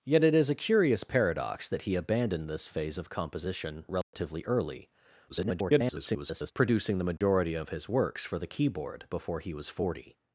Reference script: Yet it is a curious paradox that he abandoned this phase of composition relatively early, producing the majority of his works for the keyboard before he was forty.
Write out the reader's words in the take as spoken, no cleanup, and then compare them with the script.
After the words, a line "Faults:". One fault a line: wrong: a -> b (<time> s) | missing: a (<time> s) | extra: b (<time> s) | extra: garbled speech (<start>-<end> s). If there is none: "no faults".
Yet it is a curious paradox that he abandoned this phase of composition relatively early, [garbled] producing the majority of his works for the keyboard before he was forty.
Faults:
extra: garbled speech (5.3-6.5 s)